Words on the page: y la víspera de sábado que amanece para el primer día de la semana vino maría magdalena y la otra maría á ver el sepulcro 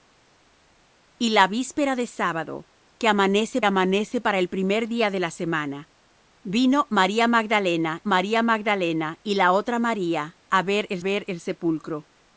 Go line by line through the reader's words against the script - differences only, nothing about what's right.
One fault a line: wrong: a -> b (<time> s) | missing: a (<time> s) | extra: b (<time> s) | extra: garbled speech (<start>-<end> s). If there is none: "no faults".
extra: amanece (3.6 s)
extra: maría magdalena (8.0 s)
extra: ver el (11.0 s)